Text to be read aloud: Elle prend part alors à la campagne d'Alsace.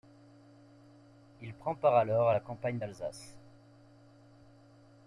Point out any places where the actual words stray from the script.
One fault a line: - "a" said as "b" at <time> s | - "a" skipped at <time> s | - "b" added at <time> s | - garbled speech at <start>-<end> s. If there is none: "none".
- "Elle" said as "Il" at 1.4 s